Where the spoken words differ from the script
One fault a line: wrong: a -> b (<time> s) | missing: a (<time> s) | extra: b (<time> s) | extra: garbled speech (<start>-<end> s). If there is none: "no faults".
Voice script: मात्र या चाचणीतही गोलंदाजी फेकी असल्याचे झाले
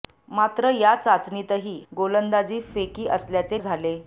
no faults